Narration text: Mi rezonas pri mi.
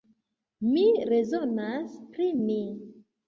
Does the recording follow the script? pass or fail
pass